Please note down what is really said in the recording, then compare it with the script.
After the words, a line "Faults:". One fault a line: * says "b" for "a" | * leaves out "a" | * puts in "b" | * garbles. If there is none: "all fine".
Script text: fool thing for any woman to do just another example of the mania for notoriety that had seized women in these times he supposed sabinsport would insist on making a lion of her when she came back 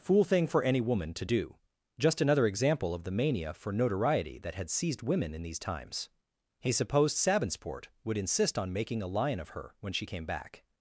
fool thing for any woman to do just another example of the mania for notoriety that had seized women in these times he supposed sabinsport would insist on making a lion of her when she came back
Faults:
all fine